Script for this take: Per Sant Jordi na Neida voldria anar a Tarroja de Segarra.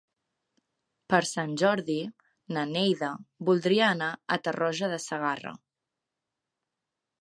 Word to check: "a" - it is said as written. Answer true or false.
true